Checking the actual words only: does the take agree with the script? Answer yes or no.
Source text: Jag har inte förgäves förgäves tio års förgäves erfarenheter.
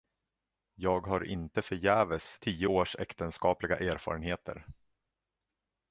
no